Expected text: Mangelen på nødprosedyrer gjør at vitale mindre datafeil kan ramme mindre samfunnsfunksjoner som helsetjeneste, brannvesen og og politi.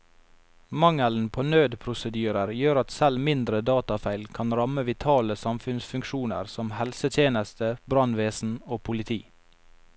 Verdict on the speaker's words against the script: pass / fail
fail